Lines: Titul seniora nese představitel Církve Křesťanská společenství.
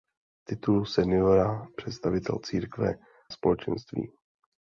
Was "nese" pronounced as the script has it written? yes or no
no